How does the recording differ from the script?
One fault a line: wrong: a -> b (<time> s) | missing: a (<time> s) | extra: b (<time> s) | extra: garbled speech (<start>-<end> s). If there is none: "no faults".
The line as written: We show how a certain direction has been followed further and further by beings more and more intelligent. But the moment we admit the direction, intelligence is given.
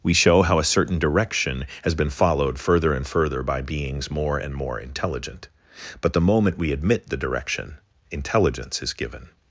no faults